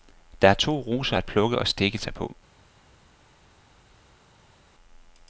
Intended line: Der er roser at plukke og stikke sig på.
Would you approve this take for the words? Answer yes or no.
no